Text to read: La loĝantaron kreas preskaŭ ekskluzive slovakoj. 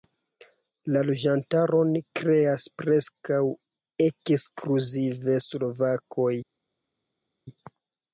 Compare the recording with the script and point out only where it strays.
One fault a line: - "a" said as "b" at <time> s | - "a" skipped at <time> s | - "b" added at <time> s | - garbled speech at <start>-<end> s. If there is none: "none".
none